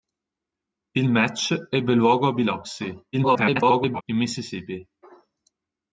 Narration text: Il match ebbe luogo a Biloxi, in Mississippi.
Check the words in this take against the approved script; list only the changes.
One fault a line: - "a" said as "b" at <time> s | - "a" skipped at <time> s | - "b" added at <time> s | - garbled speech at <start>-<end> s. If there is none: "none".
- garbled speech at 3.1-4.0 s